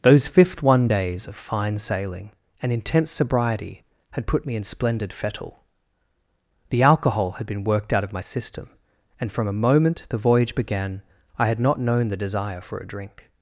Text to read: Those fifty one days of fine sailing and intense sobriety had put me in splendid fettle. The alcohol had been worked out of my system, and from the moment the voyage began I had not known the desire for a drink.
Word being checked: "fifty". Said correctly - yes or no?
no